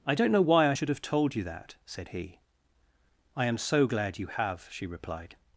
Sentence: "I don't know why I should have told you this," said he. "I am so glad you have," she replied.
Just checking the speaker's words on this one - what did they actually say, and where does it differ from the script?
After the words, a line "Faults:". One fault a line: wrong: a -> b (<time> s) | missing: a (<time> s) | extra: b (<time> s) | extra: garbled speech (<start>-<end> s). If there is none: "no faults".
"I don't know why I should have told you that," said he. "I am so glad you have," she replied.
Faults:
wrong: this -> that (1.4 s)